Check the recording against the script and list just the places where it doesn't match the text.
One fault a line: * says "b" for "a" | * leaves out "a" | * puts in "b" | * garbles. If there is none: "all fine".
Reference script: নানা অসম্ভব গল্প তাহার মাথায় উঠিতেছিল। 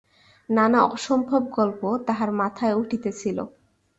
all fine